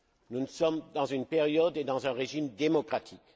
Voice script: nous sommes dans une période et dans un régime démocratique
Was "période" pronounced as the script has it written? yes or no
yes